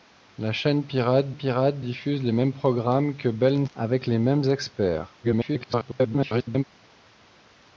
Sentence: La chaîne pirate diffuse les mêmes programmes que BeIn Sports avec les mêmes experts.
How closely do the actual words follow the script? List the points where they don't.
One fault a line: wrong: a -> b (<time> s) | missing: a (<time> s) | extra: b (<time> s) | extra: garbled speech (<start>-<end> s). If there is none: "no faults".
extra: pirate (1.3 s)
missing: Sports (3.7 s)
extra: garbled speech (5.2-6.6 s)